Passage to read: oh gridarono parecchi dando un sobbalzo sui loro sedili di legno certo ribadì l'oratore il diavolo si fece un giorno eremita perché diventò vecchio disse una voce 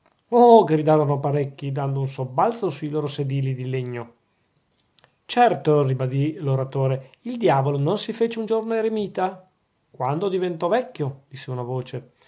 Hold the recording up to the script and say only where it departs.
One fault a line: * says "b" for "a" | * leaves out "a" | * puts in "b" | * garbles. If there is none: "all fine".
* puts in "non"
* says "quando" for "perché"